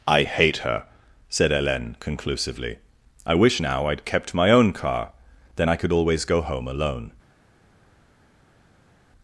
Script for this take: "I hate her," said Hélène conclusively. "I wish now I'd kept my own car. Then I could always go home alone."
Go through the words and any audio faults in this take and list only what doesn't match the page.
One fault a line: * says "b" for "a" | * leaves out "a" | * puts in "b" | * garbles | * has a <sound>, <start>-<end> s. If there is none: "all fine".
all fine